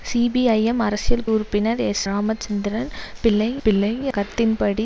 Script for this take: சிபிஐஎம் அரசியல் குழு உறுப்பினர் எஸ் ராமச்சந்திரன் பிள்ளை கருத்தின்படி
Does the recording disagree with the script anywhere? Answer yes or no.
yes